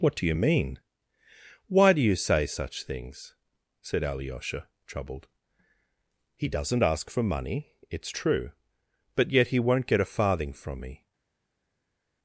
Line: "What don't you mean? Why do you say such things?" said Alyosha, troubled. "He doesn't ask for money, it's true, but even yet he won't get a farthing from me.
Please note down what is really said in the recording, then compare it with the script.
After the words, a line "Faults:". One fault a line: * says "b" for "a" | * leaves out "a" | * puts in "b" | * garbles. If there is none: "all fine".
"What do you mean? Why do you say such things?" said Alyosha, troubled. "He doesn't ask for money, it's true, but yet he won't get a farthing from me.
Faults:
* says "do" for "don't"
* leaves out "even"